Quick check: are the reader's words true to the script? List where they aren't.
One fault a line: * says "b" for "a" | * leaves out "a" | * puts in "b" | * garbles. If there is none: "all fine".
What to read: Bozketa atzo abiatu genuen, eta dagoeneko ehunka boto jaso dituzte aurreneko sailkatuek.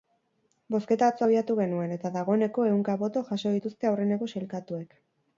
all fine